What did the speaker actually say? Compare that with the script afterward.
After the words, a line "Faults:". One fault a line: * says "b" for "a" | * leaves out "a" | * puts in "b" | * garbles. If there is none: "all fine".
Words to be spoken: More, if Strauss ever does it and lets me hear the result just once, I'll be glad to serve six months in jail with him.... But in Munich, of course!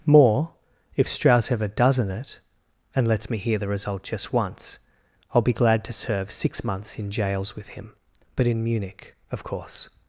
More, if Strauss ever doesn't it and lets me hear the result just once, I'll be glad to serve six months in jails with him.... But in Munich, of course!
Faults:
* says "doesn't" for "does"
* says "jails" for "jail"